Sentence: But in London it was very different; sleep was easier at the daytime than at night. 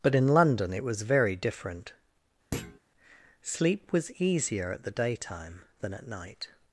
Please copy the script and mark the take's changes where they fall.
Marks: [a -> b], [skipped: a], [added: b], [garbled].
But in London it was very different; sleep was easier at the daytime than at night.